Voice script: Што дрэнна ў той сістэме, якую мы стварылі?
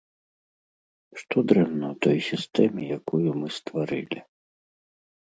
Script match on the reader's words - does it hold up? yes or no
yes